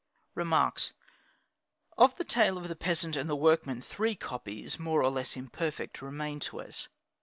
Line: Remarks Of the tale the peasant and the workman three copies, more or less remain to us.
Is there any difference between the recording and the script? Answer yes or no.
yes